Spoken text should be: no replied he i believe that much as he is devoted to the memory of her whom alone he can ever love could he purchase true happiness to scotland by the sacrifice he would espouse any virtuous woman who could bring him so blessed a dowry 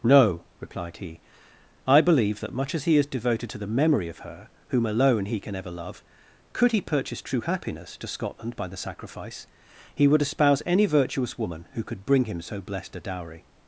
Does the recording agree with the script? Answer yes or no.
yes